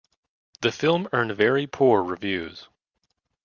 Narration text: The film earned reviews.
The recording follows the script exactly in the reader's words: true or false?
false